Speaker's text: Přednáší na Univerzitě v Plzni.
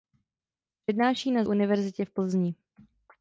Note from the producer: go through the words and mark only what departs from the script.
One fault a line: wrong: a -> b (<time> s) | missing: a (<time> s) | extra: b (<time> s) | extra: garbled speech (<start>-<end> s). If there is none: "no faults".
no faults